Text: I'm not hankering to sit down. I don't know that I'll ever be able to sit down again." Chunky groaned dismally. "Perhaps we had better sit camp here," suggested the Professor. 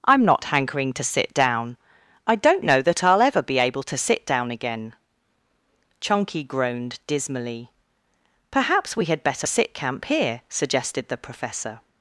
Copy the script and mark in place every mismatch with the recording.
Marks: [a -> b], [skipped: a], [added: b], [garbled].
I'm not hankering to sit down. I don't know that I'll ever be able to sit down again." Chunky groaned dismally. "Perhaps we had better sit camp here," suggested the Professor.